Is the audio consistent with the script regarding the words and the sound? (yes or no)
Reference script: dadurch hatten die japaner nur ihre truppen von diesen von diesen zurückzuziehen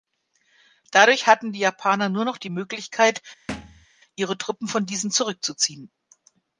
no